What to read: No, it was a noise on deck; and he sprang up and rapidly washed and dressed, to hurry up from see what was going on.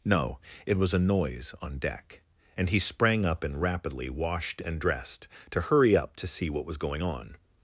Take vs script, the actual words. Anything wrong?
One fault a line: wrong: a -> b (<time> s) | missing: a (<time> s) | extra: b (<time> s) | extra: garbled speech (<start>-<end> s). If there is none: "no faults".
wrong: from -> to (6.2 s)